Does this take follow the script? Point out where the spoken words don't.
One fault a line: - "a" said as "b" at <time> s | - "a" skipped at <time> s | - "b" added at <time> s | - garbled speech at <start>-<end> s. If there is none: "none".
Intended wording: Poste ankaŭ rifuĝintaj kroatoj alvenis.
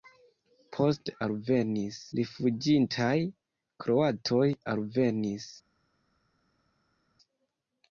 - "ankaŭ" said as "alvenis" at 1.3 s